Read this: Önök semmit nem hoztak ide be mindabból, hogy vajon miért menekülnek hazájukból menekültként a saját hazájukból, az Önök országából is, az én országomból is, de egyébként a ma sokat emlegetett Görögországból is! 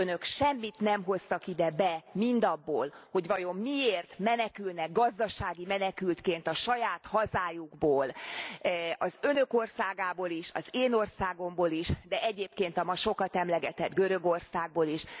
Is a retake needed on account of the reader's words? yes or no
yes